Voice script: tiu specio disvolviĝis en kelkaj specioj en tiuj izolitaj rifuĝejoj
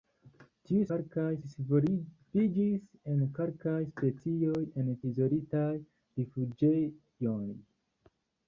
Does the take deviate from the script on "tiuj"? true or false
true